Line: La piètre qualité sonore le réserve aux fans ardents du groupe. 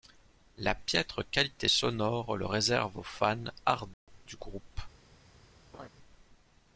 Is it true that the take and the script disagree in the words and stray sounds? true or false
true